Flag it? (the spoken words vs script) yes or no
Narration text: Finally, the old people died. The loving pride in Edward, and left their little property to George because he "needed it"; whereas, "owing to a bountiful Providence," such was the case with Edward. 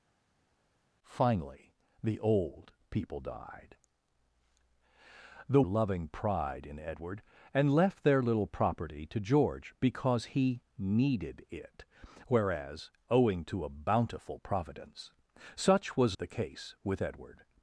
no